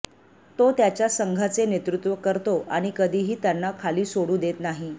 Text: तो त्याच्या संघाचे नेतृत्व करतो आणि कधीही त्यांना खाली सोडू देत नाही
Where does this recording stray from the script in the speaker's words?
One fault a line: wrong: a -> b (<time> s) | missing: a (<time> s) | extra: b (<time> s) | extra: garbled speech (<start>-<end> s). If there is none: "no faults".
no faults